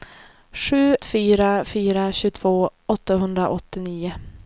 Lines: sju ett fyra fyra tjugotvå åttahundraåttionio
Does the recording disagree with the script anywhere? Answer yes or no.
yes